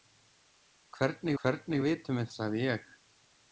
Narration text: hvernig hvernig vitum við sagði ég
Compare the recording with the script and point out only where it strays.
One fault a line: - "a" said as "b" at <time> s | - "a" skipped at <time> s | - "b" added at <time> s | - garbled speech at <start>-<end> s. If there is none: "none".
none